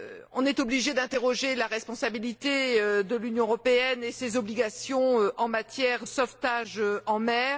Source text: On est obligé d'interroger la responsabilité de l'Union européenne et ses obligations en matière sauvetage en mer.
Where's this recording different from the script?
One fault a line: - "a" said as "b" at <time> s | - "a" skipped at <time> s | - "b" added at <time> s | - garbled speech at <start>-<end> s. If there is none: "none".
none